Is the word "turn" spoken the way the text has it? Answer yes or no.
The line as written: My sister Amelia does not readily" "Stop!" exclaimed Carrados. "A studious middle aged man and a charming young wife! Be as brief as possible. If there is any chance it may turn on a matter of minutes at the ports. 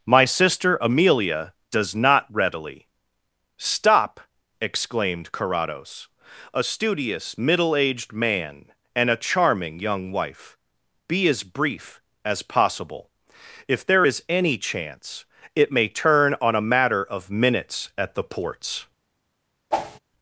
yes